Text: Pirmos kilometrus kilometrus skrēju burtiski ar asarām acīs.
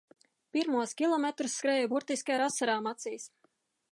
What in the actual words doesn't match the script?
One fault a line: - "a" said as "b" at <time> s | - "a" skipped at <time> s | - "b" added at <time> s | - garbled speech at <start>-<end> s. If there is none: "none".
- "kilometrus" skipped at 1.6 s